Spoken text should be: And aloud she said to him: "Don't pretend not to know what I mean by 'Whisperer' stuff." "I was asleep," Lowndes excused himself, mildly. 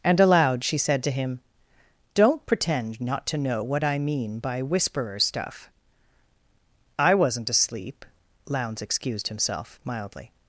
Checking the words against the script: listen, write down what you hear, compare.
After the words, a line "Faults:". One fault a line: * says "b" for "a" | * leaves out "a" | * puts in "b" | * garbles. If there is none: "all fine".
And aloud she said to him: "Don't pretend not to know what I mean by 'Whisperer' stuff." "I wasn't asleep," Lowndes excused himself, mildly.
Faults:
* says "wasn't" for "was"